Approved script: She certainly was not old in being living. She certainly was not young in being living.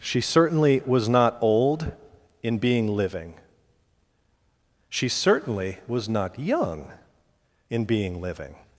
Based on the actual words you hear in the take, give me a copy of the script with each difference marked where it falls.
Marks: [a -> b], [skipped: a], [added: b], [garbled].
She certainly was not old in being living. She certainly was not young in being living.